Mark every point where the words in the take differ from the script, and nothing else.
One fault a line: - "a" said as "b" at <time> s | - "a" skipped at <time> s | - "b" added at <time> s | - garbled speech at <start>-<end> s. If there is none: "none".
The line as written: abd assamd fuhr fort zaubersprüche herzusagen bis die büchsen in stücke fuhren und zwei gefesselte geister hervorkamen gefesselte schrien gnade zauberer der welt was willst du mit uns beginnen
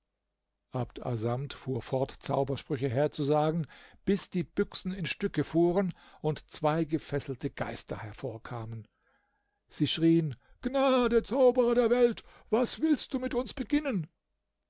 - "gefesselte" said as "sie" at 9.7 s